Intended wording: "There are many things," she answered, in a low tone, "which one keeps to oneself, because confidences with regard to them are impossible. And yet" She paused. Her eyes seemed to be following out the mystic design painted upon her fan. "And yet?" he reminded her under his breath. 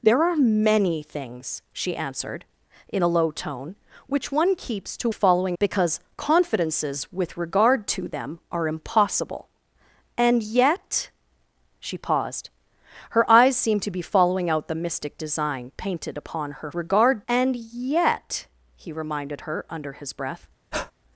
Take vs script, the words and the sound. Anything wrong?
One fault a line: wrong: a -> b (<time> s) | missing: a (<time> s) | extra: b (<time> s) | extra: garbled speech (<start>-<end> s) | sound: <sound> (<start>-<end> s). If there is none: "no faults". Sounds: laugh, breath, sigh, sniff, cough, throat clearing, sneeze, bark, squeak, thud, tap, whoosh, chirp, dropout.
wrong: oneself -> following (5.1 s)
wrong: fan -> regard (16.7 s)
sound: breath (20.7-20.9 s)